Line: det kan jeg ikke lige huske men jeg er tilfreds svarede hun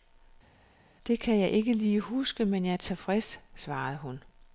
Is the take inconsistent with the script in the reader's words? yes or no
no